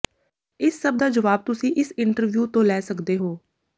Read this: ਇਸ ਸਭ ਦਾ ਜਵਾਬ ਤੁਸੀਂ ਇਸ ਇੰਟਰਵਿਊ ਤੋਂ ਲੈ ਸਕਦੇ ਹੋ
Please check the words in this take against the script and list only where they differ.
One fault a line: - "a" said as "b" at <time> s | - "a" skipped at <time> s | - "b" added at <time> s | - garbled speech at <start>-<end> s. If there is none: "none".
none